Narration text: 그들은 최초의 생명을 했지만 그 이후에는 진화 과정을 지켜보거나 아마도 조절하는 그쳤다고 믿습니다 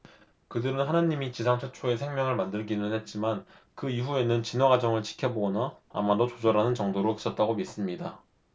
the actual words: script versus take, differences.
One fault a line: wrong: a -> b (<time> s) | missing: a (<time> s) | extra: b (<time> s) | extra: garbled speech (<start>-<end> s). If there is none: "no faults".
extra: 하느님이 지상 (0.8 s)
extra: 만들기는 (2.4 s)
extra: 정도로 (6.8 s)